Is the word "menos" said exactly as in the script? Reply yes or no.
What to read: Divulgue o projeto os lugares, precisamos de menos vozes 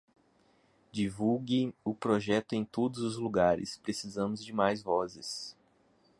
no